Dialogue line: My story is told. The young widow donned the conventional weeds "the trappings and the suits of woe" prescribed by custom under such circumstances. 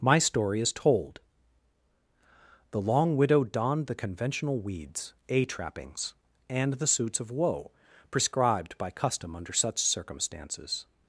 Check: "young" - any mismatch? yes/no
yes